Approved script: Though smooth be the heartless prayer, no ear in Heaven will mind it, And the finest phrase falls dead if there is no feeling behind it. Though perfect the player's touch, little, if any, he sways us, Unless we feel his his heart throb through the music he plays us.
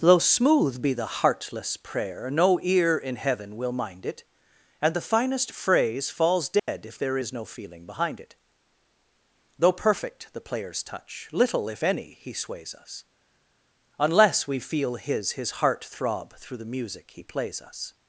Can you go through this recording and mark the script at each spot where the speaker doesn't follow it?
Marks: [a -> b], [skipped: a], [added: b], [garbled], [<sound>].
Though smooth be the heartless prayer, no ear in Heaven will mind it, And the finest phrase falls dead [dropout] if there is no feeling behind it. Though perfect the player's touch, little, if any, he sways us, Unless we feel his his heart throb through the music he plays us.